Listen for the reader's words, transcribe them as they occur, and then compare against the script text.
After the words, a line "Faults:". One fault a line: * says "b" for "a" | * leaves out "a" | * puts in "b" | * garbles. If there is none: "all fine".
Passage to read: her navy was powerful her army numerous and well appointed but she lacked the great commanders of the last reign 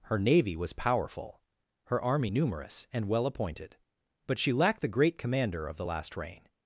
her navy was powerful her army numerous and well appointed but she lacked the great commander of the last reign
Faults:
* says "commander" for "commanders"